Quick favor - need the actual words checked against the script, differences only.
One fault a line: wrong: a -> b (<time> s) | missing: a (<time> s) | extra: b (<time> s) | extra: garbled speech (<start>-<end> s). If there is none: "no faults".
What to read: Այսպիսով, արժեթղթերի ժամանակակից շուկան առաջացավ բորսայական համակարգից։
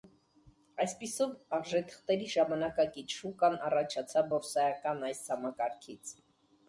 extra: այս (5.1 s)